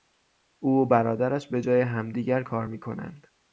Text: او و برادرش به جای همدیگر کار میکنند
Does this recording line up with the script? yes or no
yes